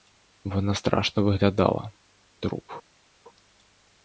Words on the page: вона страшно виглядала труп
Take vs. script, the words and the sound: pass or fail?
pass